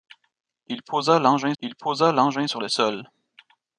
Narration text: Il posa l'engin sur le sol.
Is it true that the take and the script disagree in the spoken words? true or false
true